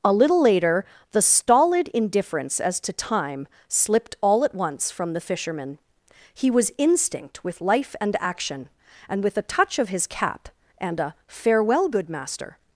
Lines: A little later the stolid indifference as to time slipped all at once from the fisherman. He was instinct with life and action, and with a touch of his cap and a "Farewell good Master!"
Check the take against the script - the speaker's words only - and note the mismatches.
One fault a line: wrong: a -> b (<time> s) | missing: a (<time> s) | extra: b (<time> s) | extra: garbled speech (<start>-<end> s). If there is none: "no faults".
no faults